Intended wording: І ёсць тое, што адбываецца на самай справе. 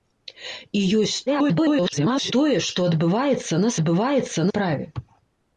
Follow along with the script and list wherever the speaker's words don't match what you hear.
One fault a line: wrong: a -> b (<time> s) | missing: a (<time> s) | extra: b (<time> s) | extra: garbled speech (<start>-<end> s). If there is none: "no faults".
extra: garbled speech (1.3-2.3 s)
wrong: самай -> адбываецца (3.7 s)